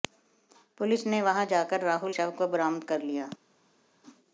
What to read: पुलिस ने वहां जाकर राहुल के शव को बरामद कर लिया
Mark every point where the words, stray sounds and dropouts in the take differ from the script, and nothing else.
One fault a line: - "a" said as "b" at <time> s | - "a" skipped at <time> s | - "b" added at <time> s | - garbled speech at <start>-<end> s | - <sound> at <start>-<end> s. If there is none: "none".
- "के" skipped at 2.1 s